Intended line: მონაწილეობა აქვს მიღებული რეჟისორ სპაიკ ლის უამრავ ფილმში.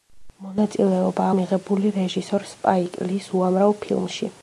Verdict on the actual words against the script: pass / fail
fail